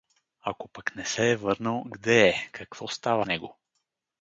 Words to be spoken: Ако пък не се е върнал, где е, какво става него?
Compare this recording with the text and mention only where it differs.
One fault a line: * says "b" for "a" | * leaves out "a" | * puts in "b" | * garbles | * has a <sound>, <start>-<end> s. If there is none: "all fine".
all fine